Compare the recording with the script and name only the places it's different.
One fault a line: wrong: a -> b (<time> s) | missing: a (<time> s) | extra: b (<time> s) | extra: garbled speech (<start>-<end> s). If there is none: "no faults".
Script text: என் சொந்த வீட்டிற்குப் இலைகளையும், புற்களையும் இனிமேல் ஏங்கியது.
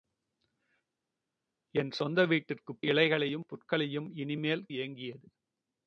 no faults